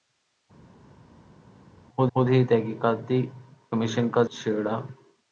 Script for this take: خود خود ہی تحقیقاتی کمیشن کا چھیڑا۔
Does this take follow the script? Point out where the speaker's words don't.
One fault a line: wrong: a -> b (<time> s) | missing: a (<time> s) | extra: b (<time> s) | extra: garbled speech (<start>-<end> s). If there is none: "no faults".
no faults